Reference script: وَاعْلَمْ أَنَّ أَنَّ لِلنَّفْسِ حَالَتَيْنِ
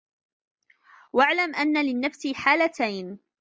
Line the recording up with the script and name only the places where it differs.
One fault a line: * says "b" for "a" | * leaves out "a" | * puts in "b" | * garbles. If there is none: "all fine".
* leaves out "أَنَّ"